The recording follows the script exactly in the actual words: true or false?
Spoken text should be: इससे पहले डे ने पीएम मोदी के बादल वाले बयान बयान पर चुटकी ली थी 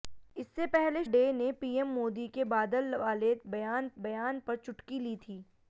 true